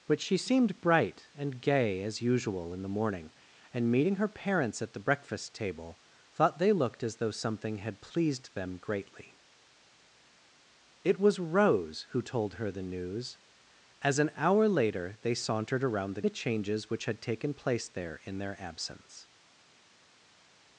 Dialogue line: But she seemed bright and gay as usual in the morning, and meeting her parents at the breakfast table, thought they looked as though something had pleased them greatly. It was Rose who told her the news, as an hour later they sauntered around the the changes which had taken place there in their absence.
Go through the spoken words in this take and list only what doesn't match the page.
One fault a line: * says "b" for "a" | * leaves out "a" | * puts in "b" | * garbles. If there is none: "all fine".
all fine